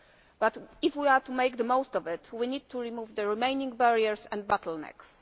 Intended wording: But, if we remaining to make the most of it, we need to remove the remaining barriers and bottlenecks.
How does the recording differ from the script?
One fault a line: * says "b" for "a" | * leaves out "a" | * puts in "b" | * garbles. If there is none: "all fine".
* says "are" for "remaining"